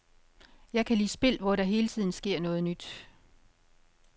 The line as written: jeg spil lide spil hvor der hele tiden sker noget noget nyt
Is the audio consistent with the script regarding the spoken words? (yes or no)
no